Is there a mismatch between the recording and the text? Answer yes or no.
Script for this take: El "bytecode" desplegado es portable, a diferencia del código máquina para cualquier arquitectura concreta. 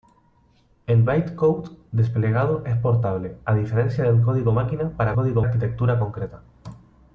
yes